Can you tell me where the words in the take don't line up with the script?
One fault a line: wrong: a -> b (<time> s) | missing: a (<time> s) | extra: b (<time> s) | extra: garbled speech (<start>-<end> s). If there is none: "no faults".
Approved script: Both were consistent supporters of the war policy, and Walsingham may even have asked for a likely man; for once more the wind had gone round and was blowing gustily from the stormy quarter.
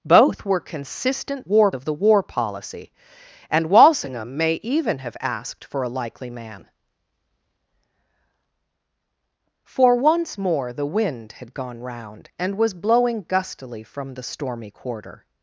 wrong: supporters -> war (1.4 s)